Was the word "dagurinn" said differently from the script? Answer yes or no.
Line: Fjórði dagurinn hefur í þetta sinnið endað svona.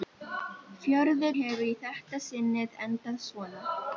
yes